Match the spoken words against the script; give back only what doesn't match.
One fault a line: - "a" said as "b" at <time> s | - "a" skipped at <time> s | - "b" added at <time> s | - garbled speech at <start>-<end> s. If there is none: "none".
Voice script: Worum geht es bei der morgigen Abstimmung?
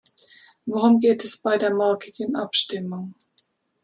none